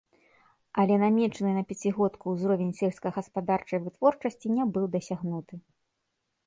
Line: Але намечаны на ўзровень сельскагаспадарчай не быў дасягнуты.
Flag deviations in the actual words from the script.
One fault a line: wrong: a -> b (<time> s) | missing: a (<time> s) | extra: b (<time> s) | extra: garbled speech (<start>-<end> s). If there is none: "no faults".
extra: пяцігодку (1.7 s)
extra: вытворчасці (3.9 s)